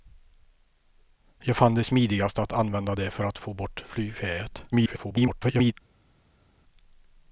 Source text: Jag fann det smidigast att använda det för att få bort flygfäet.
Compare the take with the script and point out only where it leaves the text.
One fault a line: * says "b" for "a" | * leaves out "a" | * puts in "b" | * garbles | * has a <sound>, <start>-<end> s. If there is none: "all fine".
* garbles